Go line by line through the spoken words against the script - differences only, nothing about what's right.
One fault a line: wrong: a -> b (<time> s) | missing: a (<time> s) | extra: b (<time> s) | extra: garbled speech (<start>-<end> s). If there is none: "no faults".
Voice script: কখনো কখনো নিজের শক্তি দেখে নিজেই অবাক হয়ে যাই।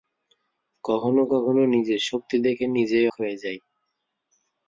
missing: অবাক (3.1 s)